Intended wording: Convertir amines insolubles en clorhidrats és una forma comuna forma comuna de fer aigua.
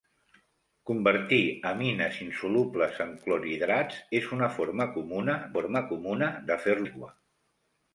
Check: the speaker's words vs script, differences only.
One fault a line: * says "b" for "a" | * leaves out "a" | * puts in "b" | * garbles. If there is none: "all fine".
all fine